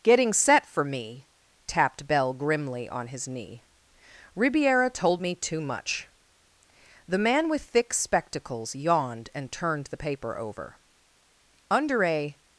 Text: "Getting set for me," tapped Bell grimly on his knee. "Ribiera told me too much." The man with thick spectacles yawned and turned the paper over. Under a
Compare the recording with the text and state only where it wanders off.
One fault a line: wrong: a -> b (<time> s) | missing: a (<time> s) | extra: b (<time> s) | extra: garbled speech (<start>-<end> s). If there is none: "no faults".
no faults